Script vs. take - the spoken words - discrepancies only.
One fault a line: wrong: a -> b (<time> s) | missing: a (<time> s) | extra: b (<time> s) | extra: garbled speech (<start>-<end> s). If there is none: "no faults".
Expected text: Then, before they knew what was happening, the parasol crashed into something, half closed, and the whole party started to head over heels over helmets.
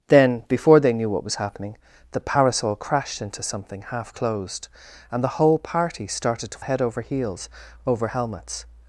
no faults